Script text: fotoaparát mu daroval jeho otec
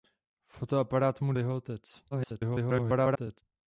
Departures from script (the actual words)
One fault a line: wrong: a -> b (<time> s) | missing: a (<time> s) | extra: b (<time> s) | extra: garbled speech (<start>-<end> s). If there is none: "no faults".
missing: daroval (1.3 s)
extra: garbled speech (2.1-3.4 s)